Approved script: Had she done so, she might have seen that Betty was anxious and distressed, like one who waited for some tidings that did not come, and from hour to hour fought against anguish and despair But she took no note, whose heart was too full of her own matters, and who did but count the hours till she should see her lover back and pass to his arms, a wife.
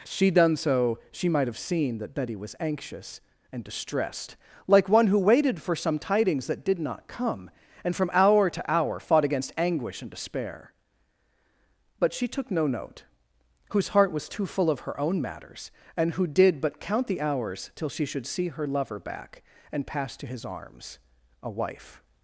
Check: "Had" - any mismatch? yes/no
yes